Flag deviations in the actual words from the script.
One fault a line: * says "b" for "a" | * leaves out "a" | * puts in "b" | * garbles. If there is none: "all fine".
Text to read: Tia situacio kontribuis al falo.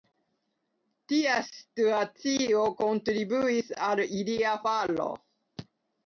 * puts in "ilia"